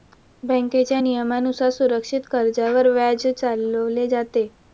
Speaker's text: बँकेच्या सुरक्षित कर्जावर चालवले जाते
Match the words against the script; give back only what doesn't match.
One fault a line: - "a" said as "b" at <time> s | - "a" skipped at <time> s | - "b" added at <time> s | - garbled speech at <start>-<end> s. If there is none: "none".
- "नियमानुसार" added at 1.0 s
- "व्याज" added at 2.9 s